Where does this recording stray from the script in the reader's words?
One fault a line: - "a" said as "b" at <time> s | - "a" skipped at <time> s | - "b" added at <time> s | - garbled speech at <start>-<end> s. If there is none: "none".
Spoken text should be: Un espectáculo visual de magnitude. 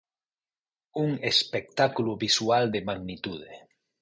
none